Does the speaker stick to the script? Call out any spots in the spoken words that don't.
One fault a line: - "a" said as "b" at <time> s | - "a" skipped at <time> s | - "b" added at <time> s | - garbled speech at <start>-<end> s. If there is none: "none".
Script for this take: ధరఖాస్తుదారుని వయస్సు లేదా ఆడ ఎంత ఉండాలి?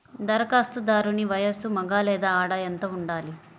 - "మగ" added at 1.8 s